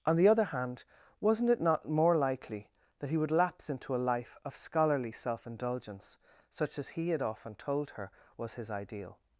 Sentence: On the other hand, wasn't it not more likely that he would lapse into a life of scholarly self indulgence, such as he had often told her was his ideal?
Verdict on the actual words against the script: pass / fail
pass